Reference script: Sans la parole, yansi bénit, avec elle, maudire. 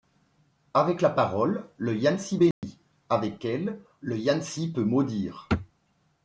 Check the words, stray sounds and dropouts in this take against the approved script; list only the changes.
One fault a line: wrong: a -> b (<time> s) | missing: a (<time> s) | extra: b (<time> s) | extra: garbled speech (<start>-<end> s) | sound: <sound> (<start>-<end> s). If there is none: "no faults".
wrong: Sans -> Avec (0.7 s)
extra: le (1.8 s)
sound: dropout (2.5-2.6 s)
extra: le Yansi peut (4.0 s)